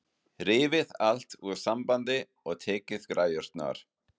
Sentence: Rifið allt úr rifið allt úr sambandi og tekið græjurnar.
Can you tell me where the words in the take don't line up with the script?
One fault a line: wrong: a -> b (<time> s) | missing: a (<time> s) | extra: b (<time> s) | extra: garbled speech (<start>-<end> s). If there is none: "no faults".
missing: rifið allt úr (1.6 s)